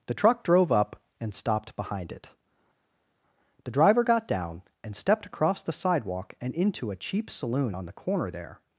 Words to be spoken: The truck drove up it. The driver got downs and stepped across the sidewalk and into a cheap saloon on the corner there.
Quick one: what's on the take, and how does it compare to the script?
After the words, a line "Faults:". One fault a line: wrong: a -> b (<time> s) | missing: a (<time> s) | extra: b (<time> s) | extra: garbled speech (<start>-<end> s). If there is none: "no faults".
The truck drove up and stopped behind it. The driver got down and stepped across the sidewalk and into a cheap saloon on the corner there.
Faults:
extra: and stopped behind (1.2 s)
wrong: downs -> down (4.3 s)